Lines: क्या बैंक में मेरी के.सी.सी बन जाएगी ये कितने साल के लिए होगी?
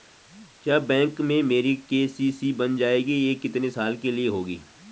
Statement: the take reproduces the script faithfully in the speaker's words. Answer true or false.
true